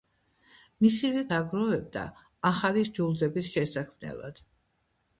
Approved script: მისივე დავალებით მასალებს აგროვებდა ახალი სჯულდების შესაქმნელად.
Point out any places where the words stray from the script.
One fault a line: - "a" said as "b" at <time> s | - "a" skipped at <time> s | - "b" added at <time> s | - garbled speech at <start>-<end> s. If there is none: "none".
- "დავალებით მასალებს" skipped at 1.2 s